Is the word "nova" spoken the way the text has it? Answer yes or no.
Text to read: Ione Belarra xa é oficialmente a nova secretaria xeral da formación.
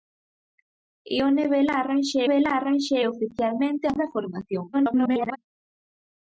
no